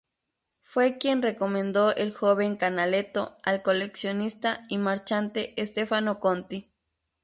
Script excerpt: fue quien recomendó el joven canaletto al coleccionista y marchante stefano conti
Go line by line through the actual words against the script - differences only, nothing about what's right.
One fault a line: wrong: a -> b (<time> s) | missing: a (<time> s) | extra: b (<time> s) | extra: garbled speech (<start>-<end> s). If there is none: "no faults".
no faults